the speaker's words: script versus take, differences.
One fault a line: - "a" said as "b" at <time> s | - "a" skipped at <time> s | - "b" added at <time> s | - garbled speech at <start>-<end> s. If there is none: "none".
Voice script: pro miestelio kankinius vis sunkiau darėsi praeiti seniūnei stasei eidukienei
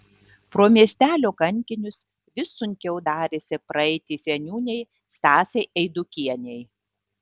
none